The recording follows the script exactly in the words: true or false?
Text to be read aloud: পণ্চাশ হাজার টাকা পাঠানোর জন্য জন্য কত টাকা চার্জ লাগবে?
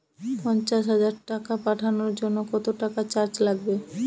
false